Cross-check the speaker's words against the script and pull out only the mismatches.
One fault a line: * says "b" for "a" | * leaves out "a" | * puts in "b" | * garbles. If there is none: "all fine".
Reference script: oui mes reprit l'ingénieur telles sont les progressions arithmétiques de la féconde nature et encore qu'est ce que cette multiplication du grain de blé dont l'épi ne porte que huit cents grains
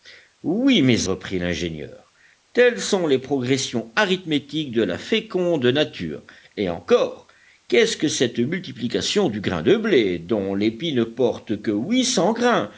all fine